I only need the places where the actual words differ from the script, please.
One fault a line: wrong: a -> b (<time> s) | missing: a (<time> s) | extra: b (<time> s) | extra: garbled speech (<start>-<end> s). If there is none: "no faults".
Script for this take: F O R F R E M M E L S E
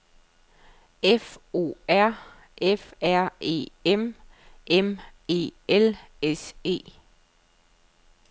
no faults